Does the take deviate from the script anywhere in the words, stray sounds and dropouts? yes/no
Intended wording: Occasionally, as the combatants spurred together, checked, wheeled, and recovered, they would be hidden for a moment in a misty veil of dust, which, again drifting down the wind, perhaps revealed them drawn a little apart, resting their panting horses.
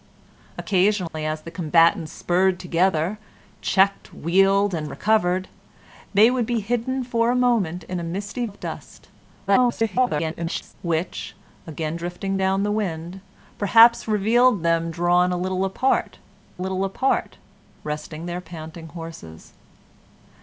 yes